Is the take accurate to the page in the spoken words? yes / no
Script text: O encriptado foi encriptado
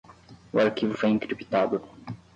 no